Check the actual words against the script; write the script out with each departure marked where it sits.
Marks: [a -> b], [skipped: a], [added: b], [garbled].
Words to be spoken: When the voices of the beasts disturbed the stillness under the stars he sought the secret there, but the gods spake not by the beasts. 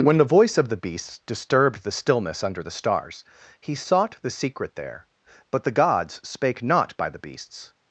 When the [voices -> voice] of the beasts disturbed the stillness under the stars he sought the secret there, but the gods spake not by the beasts.